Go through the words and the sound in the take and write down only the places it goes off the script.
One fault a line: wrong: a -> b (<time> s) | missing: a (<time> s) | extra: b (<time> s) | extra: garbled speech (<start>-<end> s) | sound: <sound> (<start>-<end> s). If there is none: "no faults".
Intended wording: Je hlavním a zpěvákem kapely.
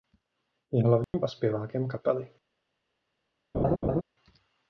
sound: dropout (1.0-1.1 s)
sound: laugh (3.5-4.0 s)